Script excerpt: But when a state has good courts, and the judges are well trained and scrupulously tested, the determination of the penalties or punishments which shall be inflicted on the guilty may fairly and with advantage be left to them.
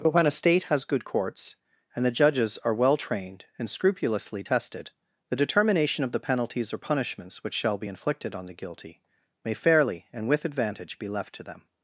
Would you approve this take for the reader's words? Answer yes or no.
yes